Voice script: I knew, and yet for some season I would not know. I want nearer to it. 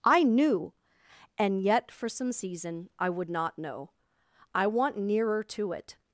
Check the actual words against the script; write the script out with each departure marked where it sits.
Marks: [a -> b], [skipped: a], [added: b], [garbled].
I knew, and yet for some season I would not know. I want nearer to it.